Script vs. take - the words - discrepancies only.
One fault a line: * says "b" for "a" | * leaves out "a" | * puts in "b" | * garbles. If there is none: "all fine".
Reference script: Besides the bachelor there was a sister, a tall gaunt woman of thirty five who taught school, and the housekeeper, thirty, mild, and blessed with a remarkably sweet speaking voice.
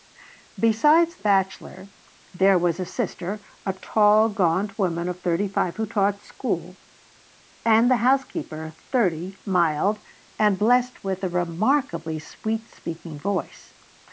* leaves out "the"